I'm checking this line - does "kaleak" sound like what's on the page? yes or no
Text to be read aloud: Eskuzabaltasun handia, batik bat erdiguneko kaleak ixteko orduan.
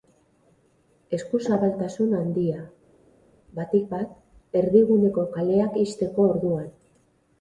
yes